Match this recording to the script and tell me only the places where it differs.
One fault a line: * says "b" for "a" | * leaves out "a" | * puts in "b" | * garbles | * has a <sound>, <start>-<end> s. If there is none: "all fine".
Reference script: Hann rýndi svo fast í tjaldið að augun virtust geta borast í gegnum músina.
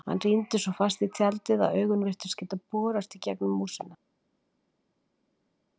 all fine